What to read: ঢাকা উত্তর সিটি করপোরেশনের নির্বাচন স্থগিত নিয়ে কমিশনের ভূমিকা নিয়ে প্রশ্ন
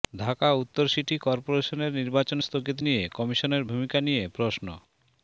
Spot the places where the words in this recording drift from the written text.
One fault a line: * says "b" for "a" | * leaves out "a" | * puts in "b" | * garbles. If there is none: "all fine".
all fine